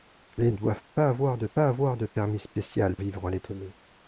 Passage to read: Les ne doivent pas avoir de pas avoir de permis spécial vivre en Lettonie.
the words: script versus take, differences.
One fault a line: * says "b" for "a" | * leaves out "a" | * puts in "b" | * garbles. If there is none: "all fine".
all fine